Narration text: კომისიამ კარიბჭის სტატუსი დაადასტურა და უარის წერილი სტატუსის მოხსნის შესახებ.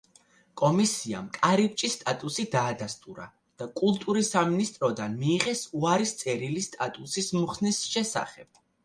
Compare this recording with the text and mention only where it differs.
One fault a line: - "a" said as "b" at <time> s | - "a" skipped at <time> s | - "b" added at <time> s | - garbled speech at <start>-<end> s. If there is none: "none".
- "კულტურის სამინისტროდან მიიღეს" added at 3.8 s